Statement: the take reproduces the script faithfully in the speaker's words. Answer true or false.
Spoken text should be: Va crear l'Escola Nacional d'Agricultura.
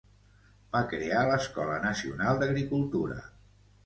true